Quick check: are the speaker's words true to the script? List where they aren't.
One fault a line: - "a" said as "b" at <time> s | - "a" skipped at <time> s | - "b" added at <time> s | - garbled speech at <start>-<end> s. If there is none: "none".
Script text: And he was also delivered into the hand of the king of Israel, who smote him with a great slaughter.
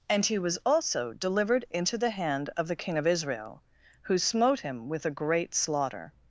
none